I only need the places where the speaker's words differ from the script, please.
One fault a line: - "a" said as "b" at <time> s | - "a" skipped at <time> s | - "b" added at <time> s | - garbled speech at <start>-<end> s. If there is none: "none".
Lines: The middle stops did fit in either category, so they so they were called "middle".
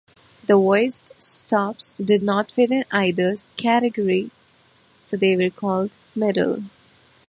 - "middle" said as "voiced" at 0.6 s
- "not" added at 2.2 s
- "so they" skipped at 5.4 s